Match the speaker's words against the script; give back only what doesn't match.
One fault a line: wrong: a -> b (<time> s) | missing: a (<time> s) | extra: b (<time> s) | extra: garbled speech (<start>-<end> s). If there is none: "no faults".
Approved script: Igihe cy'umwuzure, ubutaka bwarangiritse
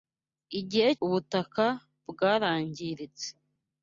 missing: cy'umwuzure (0.9 s)